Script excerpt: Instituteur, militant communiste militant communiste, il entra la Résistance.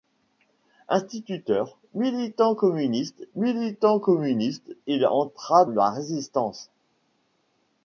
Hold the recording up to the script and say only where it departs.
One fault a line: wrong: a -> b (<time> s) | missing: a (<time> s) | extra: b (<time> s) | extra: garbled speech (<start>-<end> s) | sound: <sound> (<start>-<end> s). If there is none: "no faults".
no faults